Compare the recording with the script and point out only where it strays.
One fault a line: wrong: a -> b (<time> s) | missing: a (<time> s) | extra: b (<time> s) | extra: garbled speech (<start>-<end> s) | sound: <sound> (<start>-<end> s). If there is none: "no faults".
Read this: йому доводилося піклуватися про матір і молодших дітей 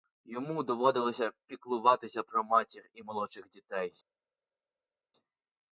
no faults